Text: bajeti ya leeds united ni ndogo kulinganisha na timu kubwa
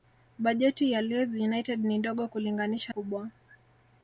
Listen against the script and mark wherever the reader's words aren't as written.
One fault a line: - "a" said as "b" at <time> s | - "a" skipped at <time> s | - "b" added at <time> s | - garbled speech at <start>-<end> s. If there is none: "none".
- "na timu" skipped at 2.9 s